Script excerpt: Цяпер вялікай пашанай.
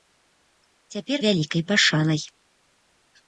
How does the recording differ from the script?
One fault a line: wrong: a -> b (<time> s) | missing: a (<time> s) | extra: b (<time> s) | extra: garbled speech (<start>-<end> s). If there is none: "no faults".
no faults